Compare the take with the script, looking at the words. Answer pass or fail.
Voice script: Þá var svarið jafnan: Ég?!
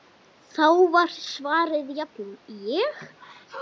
pass